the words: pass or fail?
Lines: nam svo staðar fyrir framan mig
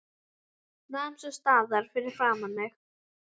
pass